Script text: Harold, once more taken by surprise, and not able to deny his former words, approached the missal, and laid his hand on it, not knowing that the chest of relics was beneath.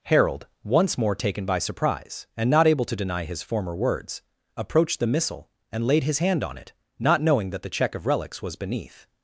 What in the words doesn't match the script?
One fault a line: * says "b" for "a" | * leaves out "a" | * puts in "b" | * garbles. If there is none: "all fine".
* says "check" for "chest"